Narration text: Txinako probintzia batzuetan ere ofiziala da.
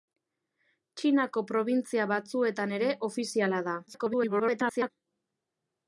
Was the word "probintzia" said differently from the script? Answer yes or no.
no